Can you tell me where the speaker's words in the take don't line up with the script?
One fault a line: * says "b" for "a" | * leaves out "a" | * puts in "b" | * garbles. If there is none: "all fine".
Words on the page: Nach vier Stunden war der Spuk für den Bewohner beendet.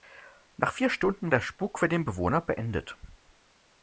* leaves out "war"